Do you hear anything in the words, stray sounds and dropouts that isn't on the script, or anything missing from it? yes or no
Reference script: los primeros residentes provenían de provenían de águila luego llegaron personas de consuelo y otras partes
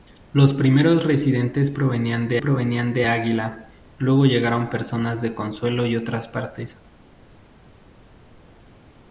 no